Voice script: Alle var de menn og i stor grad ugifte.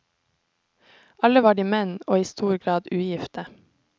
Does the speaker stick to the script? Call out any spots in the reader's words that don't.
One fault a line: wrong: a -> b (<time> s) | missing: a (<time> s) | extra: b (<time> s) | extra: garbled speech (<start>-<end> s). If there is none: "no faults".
no faults